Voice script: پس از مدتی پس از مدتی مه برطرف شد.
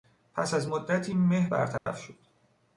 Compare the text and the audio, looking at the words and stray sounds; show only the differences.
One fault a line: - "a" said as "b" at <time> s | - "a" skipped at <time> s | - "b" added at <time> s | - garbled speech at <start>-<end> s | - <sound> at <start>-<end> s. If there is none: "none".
- "پس از مدتی" skipped at 1.1 s
- dropout at 1.8-1.9 s